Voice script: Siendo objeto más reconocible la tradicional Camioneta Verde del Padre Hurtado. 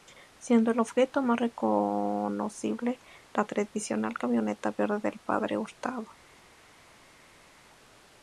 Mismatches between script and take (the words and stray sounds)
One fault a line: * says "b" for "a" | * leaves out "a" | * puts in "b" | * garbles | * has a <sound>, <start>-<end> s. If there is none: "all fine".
* puts in "el"